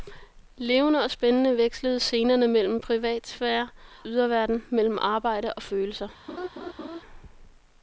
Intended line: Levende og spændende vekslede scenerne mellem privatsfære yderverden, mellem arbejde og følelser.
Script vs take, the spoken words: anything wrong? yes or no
no